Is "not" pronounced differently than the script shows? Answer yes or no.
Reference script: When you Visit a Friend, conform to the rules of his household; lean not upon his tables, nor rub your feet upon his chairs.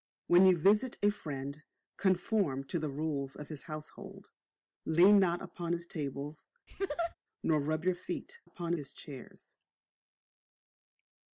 no